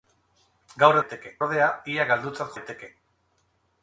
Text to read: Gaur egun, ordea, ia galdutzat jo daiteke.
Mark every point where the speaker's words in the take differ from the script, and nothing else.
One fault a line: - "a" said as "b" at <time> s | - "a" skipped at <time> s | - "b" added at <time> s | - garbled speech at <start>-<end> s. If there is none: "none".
- "egun" said as "daiteke" at 1.0 s
- "jo" skipped at 2.5 s